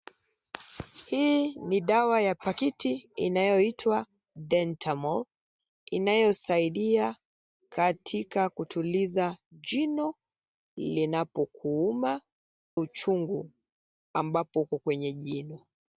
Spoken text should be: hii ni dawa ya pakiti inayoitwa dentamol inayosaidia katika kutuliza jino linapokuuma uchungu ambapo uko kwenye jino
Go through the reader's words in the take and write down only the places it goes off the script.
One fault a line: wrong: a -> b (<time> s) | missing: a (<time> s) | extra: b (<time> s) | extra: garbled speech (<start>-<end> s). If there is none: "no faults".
no faults